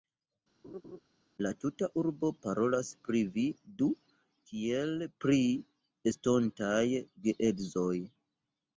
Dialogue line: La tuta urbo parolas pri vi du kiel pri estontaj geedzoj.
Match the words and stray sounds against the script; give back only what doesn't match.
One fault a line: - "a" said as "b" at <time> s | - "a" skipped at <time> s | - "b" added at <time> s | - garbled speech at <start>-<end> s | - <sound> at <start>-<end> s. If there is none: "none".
- laugh at 0.6-1.0 s